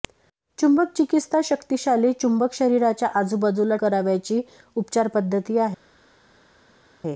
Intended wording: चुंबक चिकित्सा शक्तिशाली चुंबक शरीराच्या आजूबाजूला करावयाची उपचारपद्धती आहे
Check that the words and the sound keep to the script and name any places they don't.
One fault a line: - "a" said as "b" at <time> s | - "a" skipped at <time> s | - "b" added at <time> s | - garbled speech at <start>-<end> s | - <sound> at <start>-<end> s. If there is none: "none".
none